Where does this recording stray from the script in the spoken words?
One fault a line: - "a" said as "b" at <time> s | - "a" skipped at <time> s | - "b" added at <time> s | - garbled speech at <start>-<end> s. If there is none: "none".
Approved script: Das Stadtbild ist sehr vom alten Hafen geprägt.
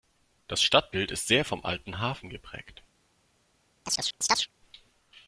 none